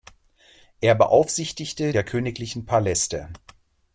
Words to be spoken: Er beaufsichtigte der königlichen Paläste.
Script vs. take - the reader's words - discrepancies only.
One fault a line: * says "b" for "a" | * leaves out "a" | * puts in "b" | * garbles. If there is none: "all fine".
all fine